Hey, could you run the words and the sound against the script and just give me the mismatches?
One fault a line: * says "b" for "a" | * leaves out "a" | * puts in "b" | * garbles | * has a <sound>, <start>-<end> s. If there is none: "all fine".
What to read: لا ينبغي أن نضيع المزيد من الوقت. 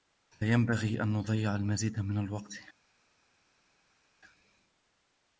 all fine